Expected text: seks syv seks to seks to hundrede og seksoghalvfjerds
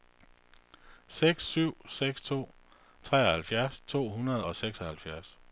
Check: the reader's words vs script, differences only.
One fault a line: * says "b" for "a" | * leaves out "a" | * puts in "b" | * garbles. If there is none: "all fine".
* says "treoghalvfjerds" for "seks"